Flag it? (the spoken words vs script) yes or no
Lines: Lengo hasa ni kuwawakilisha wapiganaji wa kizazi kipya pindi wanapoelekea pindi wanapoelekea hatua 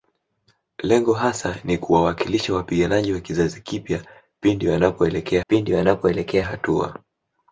no